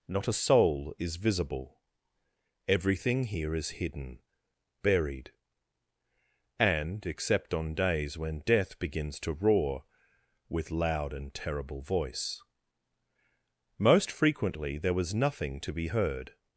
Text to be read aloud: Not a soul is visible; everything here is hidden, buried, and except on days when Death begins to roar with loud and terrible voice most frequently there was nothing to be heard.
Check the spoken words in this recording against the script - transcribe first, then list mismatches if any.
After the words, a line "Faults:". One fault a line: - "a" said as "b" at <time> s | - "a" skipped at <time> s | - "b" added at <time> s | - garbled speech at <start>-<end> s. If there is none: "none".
Not a soul is visible; everything here is hidden, buried, and except on days when Death begins to roar with loud and terrible voice most frequently there was nothing to be heard.
Faults:
none